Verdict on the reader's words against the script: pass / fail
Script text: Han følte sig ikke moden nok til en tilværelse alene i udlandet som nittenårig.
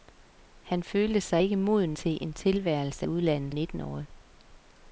fail